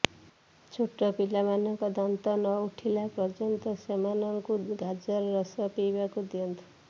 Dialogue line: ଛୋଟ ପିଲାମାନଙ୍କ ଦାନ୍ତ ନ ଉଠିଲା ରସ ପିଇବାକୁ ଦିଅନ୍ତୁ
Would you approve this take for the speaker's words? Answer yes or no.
no